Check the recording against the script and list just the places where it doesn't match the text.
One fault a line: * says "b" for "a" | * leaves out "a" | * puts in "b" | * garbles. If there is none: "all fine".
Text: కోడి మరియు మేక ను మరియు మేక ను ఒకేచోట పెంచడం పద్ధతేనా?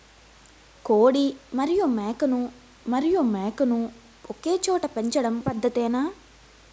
all fine